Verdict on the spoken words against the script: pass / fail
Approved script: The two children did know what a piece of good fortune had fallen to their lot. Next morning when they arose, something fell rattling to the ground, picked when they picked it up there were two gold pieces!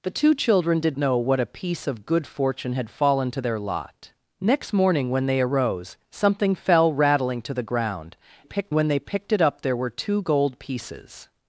pass